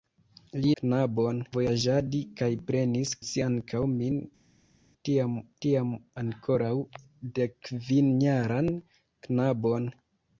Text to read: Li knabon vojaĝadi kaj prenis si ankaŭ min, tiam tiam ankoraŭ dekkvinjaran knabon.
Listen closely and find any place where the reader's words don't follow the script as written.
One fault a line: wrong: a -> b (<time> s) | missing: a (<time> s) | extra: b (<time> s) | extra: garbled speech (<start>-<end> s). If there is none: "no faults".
no faults